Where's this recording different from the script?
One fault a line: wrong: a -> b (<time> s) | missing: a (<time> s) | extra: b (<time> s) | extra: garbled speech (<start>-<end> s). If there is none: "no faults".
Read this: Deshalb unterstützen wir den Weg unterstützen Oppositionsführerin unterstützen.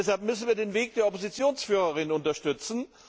wrong: unterstützen -> müssen (0.2 s)
wrong: unterstützen -> der (0.9 s)